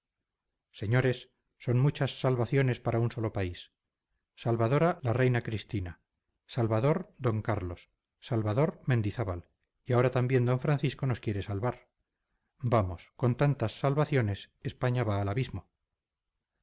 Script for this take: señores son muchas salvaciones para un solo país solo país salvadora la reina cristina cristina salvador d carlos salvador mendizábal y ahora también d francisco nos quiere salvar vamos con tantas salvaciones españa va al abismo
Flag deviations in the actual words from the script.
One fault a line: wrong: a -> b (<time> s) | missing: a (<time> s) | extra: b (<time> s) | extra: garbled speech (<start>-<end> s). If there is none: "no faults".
missing: solo país (3.7 s)
missing: cristina (6.0 s)